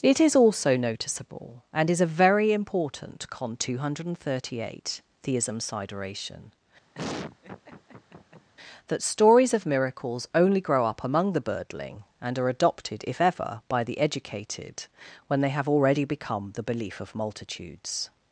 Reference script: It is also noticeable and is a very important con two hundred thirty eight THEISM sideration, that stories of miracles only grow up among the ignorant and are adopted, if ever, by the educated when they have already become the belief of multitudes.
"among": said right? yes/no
yes